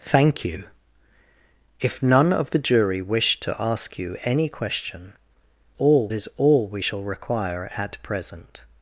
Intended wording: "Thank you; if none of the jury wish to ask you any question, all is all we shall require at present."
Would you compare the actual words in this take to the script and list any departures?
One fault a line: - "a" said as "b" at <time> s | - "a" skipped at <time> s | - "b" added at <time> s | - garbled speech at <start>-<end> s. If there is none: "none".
none